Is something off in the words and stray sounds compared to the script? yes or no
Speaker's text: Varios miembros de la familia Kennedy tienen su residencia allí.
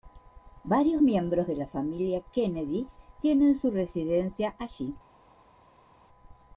no